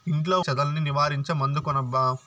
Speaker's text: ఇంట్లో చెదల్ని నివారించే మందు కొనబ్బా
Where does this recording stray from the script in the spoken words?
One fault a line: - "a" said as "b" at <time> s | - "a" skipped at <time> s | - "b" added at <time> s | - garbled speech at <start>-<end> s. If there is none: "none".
none